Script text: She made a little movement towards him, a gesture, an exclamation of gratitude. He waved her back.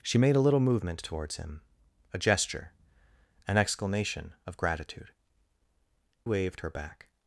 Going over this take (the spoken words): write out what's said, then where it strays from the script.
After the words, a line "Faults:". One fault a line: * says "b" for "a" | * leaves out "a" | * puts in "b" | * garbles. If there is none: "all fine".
She made a little movement towards him, a gesture, an exclamation of gratitude. Waved her back.
Faults:
* leaves out "He"